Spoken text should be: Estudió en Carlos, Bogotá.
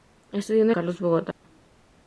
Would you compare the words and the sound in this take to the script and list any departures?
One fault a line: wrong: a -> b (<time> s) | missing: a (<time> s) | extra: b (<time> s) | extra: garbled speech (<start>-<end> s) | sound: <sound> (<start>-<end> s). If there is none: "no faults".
sound: dropout (1.3-1.4 s)